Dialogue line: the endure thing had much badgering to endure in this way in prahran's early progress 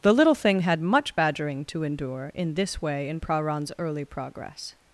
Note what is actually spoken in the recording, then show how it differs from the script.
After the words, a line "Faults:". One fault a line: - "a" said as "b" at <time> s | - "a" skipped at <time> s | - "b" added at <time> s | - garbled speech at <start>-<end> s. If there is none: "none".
the little thing had much badgering to endure in this way in prahran's early progress
Faults:
- "endure" said as "little" at 0.1 s